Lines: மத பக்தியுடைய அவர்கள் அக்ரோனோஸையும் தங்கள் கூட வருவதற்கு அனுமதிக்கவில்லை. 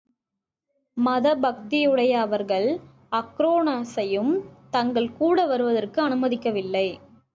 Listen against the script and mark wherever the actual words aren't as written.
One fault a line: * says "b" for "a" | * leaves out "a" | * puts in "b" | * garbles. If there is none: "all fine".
all fine